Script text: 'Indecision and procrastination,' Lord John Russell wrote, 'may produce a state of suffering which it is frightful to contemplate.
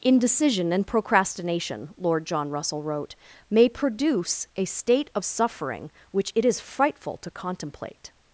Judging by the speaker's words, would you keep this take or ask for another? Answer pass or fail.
pass